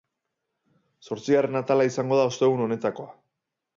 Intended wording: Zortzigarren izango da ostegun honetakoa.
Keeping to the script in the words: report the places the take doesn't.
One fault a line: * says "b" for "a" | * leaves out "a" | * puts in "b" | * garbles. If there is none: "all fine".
* puts in "atala"